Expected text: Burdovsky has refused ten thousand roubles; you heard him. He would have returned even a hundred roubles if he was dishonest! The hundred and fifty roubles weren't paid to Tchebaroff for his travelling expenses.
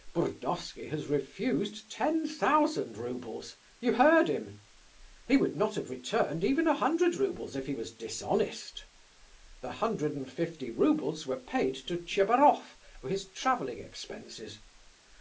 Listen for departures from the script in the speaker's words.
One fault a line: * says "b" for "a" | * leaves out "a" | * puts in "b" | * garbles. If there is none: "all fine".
* puts in "not"
* says "were" for "weren't"